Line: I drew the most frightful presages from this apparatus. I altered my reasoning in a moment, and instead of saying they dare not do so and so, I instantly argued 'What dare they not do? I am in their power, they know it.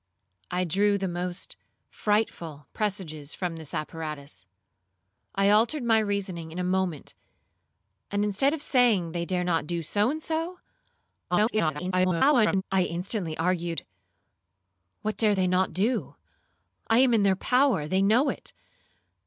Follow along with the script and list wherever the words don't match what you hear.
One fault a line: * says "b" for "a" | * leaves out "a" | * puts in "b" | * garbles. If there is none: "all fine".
* garbles